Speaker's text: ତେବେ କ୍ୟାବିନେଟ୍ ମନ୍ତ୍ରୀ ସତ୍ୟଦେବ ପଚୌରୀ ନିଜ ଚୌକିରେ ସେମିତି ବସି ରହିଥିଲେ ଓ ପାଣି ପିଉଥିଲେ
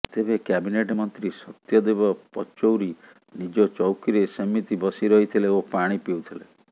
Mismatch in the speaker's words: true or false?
false